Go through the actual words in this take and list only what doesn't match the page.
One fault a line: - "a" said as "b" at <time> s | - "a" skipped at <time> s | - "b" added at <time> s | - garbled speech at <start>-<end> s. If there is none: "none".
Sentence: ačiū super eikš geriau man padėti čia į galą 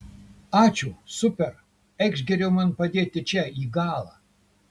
none